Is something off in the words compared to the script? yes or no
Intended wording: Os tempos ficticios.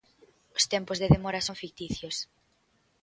yes